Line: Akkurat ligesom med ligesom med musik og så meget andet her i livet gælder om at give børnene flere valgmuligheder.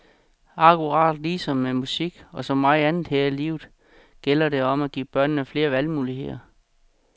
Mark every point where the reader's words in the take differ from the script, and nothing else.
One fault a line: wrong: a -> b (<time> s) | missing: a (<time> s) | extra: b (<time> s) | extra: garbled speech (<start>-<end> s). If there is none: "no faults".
missing: ligesom med (1.7 s)
extra: det (4.5 s)